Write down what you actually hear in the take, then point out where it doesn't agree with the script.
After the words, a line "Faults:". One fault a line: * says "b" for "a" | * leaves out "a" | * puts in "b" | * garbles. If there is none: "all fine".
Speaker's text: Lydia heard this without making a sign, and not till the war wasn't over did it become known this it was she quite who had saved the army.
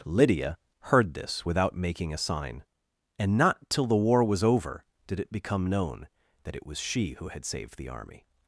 Lydia heard this without making a sign, and not till the war was over did it become known that it was she who had saved the army.
Faults:
* says "was" for "wasn't"
* says "that" for "this"
* leaves out "quite"